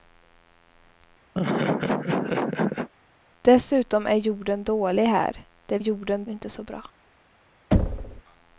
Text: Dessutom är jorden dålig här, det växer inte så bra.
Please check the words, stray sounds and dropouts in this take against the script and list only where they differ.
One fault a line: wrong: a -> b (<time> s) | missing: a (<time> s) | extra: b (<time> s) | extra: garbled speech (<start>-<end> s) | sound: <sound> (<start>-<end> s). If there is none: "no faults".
sound: laugh (1.3-2.9 s)
wrong: växer -> jorden (5.8 s)
sound: thud (7.7-8.2 s)